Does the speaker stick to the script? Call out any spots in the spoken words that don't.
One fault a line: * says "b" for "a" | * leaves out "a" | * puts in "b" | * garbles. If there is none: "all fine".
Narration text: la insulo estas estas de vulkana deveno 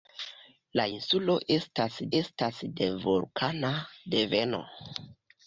all fine